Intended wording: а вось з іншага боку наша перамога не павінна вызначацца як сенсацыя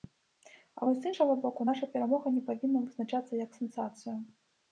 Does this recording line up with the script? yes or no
yes